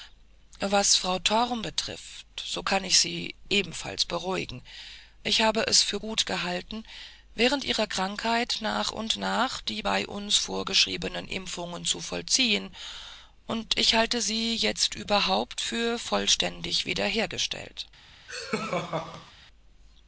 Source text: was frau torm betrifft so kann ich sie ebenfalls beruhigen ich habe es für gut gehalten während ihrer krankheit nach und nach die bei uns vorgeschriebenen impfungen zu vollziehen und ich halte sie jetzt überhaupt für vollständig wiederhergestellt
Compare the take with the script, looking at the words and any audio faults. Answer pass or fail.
fail